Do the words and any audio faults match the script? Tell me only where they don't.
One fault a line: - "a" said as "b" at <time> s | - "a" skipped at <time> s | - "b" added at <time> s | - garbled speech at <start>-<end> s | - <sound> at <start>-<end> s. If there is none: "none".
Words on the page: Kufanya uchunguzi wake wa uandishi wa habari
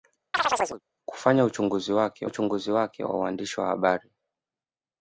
- chirp at 0.3-0.8 s
- "uchunguzi wake" added at 2.2 s